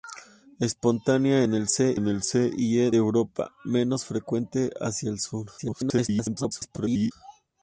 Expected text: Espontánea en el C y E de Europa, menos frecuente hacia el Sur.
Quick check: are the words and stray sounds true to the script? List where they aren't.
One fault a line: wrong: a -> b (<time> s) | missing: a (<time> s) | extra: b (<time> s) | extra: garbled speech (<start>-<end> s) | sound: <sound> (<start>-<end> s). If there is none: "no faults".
extra: en el C (1.9 s)
missing: de (2.9 s)
extra: garbled speech (5.6-7.1 s)